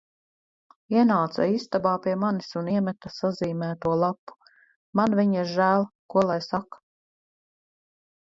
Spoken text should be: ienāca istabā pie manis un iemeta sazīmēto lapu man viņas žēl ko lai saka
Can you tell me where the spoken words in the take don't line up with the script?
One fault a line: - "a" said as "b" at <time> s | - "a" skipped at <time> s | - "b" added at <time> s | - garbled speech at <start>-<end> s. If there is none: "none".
none